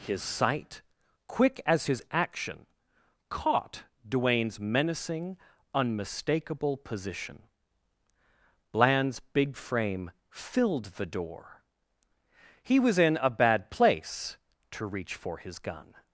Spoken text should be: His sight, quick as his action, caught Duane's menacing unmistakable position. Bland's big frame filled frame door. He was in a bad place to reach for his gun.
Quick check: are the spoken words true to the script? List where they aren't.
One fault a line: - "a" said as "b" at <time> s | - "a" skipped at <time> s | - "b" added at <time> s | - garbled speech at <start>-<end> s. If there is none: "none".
- "frame" said as "the" at 10.9 s